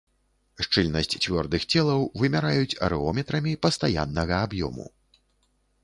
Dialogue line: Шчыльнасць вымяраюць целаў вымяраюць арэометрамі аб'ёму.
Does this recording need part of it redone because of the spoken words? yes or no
yes